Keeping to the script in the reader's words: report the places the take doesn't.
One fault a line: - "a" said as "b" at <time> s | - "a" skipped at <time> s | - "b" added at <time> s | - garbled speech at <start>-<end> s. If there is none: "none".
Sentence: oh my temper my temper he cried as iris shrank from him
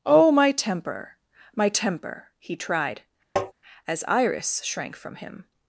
- "cried" said as "tried" at 2.5 s